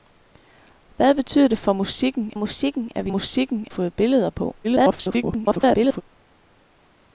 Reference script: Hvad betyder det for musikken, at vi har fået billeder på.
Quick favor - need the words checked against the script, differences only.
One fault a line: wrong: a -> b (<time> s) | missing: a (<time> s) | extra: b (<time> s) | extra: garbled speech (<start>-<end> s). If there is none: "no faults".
extra: musikken (2.4 s)
wrong: har -> musikken (3.1 s)
extra: garbled speech (4.6-6.0 s)